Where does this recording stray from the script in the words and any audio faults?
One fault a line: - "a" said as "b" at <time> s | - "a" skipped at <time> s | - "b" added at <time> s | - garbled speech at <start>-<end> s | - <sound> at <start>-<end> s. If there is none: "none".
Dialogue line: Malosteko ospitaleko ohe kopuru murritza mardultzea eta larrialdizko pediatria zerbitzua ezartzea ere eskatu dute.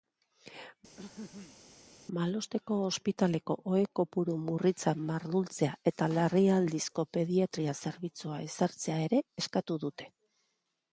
- throat clearing at 1.0-1.6 s